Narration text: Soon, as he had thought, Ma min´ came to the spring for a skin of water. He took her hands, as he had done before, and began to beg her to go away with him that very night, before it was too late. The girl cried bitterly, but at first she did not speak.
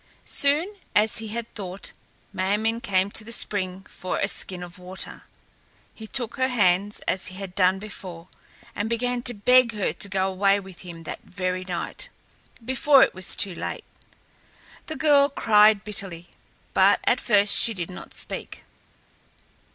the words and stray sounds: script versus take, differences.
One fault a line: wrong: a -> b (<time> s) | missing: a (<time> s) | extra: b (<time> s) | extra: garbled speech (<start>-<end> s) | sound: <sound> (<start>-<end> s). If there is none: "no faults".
no faults